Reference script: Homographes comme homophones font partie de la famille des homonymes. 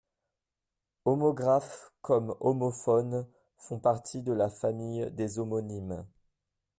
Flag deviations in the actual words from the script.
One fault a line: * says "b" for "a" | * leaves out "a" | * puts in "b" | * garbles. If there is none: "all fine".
all fine